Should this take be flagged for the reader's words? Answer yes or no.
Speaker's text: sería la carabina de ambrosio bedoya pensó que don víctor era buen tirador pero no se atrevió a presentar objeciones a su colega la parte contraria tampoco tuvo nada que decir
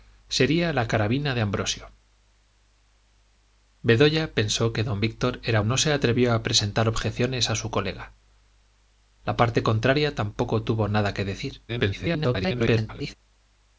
yes